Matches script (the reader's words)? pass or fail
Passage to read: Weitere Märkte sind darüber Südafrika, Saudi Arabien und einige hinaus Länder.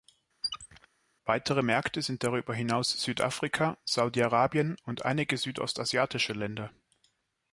fail